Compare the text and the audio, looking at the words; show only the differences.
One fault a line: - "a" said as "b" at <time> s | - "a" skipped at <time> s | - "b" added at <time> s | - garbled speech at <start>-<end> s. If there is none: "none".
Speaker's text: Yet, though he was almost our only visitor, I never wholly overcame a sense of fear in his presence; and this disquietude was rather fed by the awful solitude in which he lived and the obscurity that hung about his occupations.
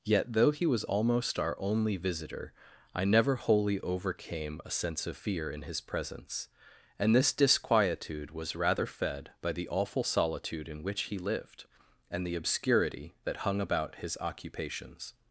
none